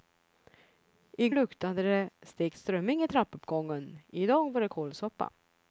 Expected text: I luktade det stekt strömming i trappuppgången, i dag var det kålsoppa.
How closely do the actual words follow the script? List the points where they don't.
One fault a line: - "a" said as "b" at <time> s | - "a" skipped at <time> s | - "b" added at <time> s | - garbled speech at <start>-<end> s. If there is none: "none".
none